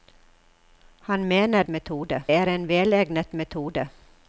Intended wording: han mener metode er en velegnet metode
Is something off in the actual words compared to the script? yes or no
no